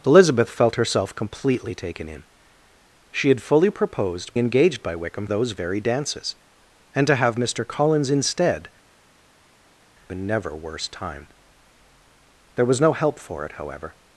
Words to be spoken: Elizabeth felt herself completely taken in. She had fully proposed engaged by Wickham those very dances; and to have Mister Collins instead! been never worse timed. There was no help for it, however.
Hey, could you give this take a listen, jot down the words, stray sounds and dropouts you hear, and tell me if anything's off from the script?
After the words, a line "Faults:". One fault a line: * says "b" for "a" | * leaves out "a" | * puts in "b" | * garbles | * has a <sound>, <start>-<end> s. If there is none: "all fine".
Elizabeth felt herself completely taken in. She had fully proposed engaged by Wickham those very dances; and to have Mister Collins instead! been never worse timed. There was no help for it, however.
Faults:
all fine